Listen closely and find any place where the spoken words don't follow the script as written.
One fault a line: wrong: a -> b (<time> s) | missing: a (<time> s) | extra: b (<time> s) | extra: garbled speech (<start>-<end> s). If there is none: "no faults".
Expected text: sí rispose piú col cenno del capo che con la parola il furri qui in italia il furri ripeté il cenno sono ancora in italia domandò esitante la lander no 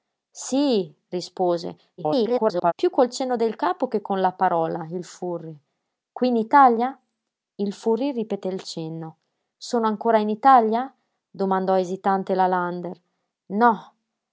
extra: garbled speech (2.0-2.7 s)